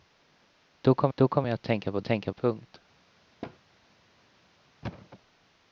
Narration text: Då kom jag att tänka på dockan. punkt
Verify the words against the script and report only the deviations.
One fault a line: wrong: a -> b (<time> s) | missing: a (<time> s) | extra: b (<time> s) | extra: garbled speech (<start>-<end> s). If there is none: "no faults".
extra: då kom (1.1 s)
wrong: dockan -> tänka (2.0 s)